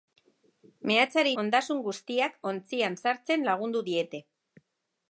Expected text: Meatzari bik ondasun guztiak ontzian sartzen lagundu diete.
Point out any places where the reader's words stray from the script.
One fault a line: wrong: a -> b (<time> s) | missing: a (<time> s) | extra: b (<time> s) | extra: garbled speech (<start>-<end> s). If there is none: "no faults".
missing: bik (1.3 s)